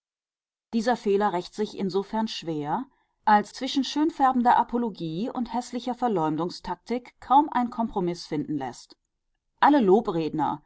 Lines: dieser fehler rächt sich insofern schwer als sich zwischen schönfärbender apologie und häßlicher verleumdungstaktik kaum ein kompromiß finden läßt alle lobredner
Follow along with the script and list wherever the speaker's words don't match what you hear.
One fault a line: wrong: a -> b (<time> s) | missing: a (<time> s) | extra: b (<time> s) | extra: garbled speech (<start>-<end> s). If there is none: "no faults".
missing: sich (3.5 s)